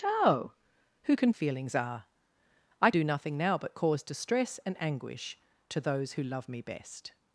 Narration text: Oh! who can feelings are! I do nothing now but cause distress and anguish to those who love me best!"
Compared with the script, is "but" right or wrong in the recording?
right